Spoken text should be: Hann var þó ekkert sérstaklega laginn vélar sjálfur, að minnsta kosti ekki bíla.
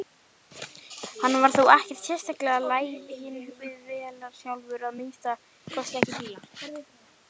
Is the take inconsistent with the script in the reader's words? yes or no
yes